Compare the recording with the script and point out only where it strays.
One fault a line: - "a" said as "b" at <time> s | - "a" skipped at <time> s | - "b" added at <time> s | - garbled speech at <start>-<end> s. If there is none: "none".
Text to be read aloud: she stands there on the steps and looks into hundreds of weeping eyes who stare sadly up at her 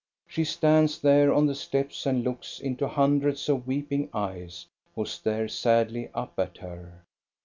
none